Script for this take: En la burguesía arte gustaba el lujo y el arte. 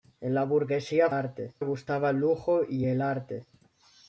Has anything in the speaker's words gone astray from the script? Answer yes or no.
no